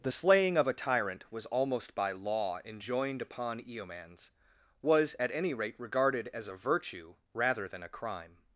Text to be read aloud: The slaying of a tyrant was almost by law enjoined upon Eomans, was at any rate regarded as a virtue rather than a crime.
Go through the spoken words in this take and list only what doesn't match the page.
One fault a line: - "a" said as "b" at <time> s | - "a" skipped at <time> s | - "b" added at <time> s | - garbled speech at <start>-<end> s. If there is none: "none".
none